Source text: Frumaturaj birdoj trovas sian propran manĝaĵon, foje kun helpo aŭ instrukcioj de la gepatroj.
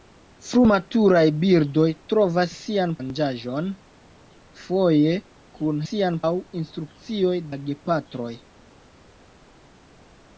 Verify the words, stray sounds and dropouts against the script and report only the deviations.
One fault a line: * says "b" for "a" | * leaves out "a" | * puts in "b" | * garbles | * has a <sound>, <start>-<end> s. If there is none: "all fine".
* leaves out "propran"
* says "sian" for "helpo"
* leaves out "de"